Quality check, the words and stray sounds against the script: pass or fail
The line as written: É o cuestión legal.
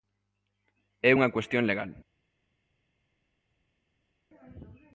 fail